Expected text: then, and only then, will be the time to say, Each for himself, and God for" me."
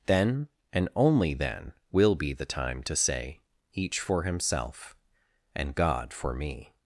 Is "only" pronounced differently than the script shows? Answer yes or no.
no